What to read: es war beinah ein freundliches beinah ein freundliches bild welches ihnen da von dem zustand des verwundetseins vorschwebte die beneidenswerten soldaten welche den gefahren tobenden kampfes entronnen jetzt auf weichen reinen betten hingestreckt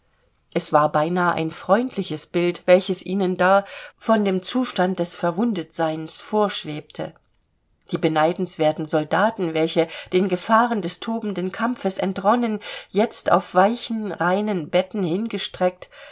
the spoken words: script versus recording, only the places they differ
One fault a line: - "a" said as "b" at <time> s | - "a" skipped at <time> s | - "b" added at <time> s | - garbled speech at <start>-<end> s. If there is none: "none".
- "beinah ein freundliches" skipped at 2.2 s
- "des" added at 10.8 s